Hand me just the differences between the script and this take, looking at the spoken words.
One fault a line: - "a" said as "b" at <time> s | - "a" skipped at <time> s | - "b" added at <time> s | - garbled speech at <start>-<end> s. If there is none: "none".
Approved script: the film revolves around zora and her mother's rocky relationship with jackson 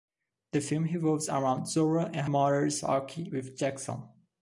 - "her" skipped at 2.3 s
- "relationship" skipped at 3.3 s